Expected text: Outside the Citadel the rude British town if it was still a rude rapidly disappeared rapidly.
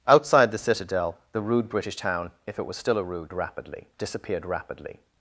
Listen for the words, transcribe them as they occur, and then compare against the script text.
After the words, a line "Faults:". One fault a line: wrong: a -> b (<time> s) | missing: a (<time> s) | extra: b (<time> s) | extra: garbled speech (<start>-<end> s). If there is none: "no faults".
Outside the Citadel the rude British town if it was still a rude rapidly disappeared rapidly.
Faults:
no faults